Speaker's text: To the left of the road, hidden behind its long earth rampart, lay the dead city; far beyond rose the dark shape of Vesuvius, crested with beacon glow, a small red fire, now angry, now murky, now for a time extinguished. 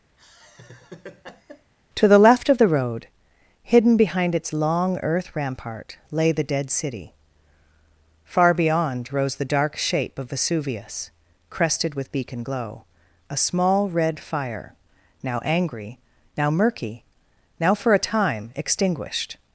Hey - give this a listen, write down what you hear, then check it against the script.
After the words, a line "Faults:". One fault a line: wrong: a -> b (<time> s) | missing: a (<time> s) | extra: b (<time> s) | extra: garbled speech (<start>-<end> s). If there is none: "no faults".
To the left of the road, hidden behind its long earth rampart, lay the dead city; far beyond rose the dark shape of Vesuvius, crested with beacon glow, a small red fire, now angry, now murky, now for a time extinguished.
Faults:
no faults